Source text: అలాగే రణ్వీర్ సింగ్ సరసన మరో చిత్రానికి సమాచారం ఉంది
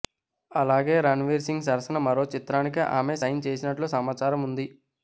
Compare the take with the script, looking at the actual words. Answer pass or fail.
fail